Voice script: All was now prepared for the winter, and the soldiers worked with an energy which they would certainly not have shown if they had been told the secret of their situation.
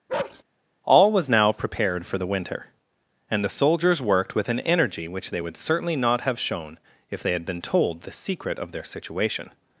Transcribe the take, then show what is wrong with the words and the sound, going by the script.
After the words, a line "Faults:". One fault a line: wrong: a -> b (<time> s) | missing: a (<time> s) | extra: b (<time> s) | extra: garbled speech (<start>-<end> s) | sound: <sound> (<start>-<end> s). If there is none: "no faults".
All was now prepared for the winter, and the soldiers worked with an energy which they would certainly not have shown if they had been told the secret of their situation.
Faults:
sound: bark (0.1-0.4 s)